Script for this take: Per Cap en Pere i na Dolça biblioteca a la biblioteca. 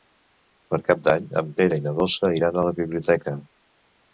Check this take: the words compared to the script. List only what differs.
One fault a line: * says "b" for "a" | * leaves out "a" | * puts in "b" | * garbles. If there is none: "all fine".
* puts in "d'Any"
* says "iran" for "biblioteca"